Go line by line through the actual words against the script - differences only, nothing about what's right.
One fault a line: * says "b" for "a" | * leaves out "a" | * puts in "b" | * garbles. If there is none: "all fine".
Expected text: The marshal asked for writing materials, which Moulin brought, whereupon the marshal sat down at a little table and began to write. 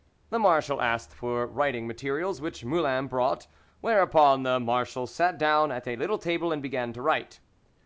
all fine